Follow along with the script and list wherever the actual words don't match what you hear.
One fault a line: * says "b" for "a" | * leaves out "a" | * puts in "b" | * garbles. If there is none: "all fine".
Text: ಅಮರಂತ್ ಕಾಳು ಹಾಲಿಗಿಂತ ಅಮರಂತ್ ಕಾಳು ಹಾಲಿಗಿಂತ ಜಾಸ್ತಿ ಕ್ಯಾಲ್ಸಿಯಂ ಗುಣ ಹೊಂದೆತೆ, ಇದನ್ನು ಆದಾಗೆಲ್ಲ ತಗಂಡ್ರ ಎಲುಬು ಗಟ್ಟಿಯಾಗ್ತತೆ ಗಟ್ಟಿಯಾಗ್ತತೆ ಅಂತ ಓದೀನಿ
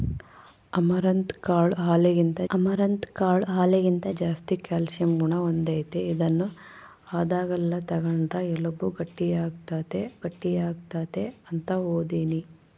all fine